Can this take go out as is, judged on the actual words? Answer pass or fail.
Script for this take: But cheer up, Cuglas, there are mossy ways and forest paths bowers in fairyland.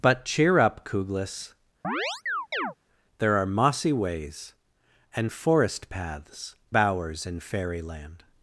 pass